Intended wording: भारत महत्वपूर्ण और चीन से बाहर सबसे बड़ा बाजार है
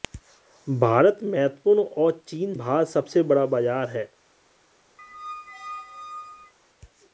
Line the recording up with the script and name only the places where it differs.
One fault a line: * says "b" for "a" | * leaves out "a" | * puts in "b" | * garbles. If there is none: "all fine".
* leaves out "से"